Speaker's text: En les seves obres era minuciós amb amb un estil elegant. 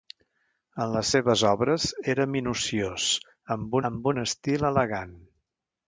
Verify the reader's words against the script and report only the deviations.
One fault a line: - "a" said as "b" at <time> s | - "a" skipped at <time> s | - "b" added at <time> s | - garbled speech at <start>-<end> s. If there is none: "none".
none